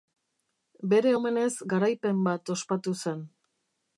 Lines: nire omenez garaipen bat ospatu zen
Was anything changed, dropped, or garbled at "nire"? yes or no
yes